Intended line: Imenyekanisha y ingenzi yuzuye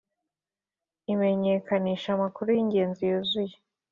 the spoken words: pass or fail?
fail